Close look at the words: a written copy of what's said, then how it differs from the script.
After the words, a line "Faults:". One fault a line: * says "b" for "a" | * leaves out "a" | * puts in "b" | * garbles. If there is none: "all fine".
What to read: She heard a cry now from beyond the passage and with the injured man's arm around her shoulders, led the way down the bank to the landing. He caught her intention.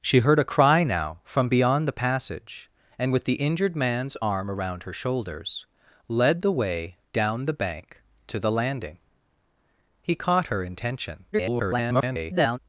She heard a cry now from beyond the passage and with the injured man's arm around her shoulders, led the way down the bank to the landing. He caught her intention. [garbled]
Faults:
* garbles